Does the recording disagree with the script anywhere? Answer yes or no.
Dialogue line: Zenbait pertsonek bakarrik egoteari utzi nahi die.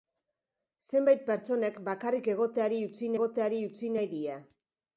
yes